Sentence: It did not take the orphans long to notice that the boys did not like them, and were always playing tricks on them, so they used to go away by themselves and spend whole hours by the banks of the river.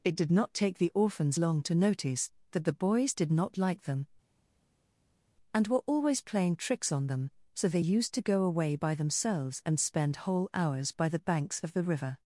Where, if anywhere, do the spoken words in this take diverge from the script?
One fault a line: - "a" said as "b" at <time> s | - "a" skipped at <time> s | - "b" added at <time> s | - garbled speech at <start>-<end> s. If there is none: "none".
none